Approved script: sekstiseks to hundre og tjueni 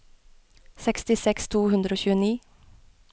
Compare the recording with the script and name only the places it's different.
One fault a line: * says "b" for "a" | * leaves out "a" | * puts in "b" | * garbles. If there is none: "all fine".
all fine